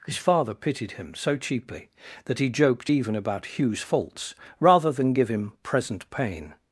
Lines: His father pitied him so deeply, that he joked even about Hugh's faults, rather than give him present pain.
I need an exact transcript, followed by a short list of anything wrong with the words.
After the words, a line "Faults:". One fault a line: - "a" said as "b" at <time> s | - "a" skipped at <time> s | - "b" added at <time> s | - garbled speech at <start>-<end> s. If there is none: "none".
His father pitied him so cheaply, that he joked even about Hugh's faults, rather than give him present pain.
Faults:
- "deeply" said as "cheaply" at 1.4 s